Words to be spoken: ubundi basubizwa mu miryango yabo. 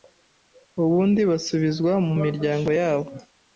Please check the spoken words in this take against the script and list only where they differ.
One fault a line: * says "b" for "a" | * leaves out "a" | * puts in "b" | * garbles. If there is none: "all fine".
all fine